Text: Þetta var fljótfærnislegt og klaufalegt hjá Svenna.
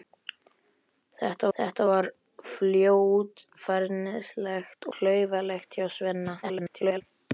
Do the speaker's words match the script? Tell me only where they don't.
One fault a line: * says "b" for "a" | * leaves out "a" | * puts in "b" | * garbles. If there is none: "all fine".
* puts in "þetta"
* leaves out "og"
* garbles